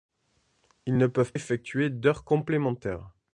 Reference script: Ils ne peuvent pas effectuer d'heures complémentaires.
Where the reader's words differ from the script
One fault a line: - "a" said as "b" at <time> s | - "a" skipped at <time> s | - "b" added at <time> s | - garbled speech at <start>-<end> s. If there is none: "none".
- "pas" skipped at 1.3 s